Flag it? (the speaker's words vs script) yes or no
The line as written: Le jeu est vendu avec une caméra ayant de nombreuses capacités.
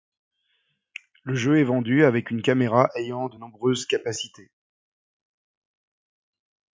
no